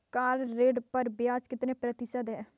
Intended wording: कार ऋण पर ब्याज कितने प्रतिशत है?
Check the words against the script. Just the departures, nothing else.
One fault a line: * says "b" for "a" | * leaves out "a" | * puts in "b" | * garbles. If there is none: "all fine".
all fine